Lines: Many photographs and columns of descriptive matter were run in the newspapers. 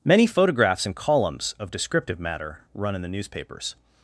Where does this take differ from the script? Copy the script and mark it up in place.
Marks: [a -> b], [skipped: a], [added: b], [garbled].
Many photographs and columns of descriptive matter [skipped: were] run in the newspapers.